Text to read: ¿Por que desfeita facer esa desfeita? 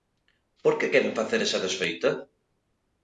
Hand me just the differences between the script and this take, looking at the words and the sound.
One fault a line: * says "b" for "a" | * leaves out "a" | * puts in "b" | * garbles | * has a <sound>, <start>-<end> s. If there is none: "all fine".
* says "queren" for "desfeita"